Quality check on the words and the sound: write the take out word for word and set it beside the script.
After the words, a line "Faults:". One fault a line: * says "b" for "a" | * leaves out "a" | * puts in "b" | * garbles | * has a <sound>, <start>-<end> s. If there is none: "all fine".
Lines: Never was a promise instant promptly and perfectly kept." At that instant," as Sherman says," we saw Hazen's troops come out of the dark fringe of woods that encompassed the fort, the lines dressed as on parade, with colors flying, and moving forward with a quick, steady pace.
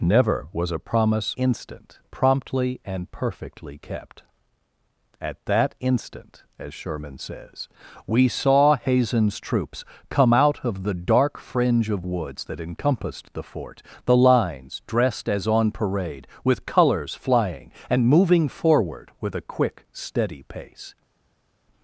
Never was a promise instant promptly and perfectly kept." At that instant," as Sherman says," we saw Hazen's troops come out of the dark fringe of woods that encompassed the fort, the lines dressed as on parade, with colors flying, and moving forward with a quick, steady pace.
Faults:
all fine